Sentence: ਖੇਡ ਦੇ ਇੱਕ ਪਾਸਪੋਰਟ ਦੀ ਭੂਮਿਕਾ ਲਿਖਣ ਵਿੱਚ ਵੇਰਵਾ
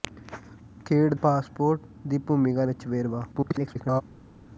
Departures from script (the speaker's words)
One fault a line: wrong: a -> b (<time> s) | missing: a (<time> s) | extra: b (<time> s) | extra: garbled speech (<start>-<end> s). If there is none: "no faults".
missing: ਦੇ ਇੱਕ (1.1 s)
missing: ਲਿਖਣ (2.6 s)
extra: garbled speech (3.3-4.0 s)